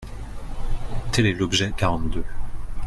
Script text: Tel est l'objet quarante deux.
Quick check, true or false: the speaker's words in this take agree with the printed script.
true